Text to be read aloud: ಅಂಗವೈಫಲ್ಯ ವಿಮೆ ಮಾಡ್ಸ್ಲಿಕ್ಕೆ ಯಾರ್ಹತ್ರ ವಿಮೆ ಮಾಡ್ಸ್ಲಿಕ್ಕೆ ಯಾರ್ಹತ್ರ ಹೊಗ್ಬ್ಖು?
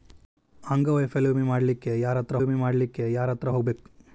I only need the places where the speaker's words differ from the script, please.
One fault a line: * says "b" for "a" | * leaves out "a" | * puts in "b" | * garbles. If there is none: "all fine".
all fine